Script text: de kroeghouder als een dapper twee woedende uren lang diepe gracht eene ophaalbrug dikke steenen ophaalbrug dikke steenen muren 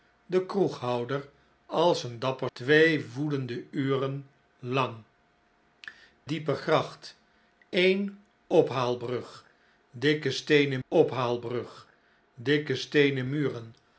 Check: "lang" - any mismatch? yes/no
no